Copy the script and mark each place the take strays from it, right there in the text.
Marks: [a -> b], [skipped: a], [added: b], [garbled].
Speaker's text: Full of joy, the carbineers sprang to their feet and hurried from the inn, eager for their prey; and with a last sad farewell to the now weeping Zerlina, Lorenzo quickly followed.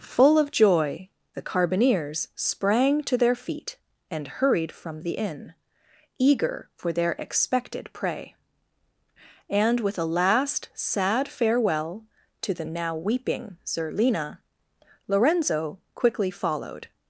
Full of joy, the carbineers sprang to their feet and hurried from the inn, eager for their [added: expected] prey; and with a last sad farewell to the now weeping Zerlina, Lorenzo quickly followed.